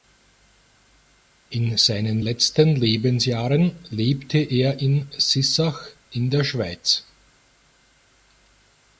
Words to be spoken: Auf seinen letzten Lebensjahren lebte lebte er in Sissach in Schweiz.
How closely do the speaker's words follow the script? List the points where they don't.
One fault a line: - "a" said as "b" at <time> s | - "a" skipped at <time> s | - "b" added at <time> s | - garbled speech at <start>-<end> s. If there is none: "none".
- "Auf" said as "In" at 1.5 s
- "lebte" skipped at 4.4 s
- "der" added at 6.3 s